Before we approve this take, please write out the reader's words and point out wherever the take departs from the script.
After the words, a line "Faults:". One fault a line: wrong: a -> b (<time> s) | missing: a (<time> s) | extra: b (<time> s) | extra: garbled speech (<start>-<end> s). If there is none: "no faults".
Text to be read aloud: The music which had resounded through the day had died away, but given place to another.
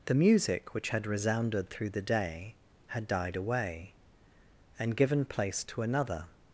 The music which had resounded through the day had died away, and given place to another.
Faults:
wrong: but -> and (4.8 s)